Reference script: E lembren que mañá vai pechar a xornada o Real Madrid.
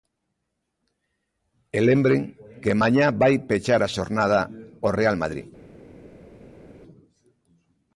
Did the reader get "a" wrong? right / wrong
right